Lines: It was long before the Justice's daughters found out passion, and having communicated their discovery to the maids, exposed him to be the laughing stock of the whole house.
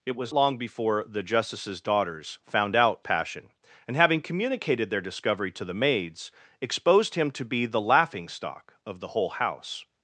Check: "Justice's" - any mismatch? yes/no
no